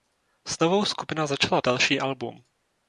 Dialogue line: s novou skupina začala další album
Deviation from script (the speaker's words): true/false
false